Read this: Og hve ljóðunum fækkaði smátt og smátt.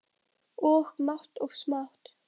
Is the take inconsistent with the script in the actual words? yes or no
yes